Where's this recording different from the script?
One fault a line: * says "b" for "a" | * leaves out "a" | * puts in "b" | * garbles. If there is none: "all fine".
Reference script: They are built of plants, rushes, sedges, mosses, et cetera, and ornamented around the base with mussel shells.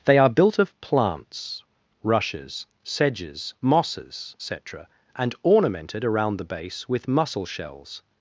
all fine